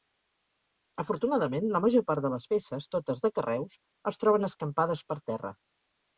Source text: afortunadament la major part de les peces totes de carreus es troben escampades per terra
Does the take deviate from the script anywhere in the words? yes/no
no